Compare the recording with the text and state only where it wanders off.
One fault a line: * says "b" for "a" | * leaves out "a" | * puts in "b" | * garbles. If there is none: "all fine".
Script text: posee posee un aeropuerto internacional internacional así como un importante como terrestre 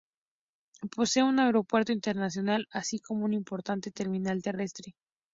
* leaves out "posee"
* leaves out "internacional"
* says "terminal" for "como"